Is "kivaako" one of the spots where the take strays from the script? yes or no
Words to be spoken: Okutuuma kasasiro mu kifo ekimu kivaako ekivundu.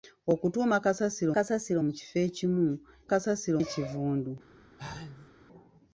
yes